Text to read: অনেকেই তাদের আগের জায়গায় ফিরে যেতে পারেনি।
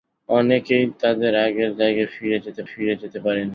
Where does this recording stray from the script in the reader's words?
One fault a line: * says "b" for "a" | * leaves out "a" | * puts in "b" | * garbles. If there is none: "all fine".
* puts in "ফিরে যেতে"